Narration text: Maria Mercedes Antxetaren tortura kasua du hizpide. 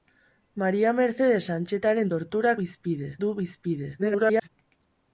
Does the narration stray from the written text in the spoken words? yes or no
yes